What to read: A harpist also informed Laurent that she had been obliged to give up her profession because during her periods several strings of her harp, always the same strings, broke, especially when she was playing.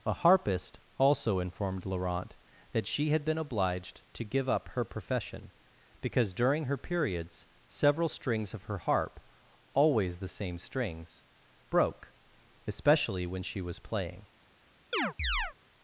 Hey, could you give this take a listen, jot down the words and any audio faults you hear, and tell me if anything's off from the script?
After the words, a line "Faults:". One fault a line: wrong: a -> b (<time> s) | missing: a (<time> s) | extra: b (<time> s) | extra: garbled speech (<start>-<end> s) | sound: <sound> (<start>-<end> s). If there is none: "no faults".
A harpist also informed Laurent that she had been obliged to give up her profession because during her periods several strings of her harp, always the same strings, broke, especially when she was playing.
Faults:
sound: chirp (14.9-15.5 s)